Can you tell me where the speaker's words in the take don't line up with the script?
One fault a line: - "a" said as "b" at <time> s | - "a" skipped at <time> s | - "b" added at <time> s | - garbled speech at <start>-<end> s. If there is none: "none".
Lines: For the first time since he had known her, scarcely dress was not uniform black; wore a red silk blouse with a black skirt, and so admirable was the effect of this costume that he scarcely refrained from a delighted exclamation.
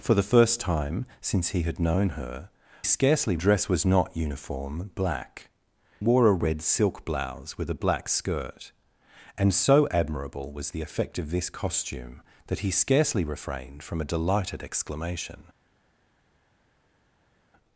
none